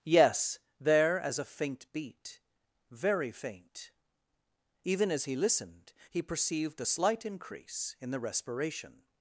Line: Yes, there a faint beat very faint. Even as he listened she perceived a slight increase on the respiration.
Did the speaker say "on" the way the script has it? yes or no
no